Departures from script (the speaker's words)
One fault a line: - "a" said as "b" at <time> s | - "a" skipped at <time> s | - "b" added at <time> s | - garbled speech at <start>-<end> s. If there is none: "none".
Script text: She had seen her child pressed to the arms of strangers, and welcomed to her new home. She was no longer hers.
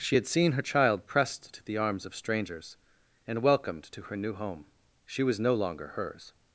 none